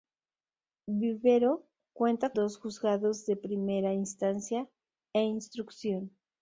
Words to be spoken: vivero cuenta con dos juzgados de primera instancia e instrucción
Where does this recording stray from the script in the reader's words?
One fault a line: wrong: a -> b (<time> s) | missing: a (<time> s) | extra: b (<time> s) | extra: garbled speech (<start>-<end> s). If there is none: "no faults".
missing: con (2.3 s)